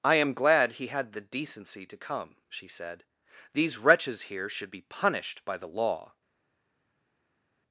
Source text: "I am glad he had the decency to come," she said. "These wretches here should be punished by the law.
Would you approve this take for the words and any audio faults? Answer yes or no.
yes